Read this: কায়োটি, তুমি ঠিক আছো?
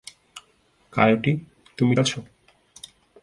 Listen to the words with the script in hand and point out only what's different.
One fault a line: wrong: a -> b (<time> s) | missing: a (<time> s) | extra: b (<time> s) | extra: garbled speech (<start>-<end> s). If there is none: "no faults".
missing: ঠিক (1.9 s)